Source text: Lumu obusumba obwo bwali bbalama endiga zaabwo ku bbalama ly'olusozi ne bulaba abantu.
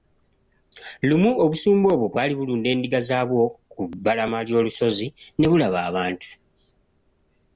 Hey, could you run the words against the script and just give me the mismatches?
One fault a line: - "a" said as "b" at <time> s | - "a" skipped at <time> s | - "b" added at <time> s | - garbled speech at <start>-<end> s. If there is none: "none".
- "bbalama" said as "bulunda" at 2.4 s